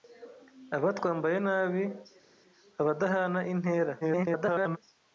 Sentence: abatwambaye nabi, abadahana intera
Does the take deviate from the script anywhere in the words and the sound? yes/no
yes